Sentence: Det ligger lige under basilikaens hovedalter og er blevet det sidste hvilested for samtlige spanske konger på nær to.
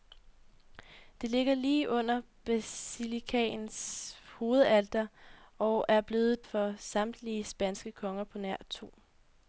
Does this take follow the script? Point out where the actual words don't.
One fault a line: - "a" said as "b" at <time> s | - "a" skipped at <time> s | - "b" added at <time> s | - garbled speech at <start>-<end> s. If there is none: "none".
- "det sidste hvilested" skipped at 6.5 s